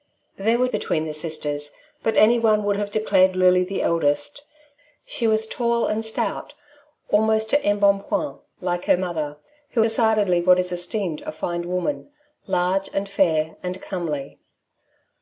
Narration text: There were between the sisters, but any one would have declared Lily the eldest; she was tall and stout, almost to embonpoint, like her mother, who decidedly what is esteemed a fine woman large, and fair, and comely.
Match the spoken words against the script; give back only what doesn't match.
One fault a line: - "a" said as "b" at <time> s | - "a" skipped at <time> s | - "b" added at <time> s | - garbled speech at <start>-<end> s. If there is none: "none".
none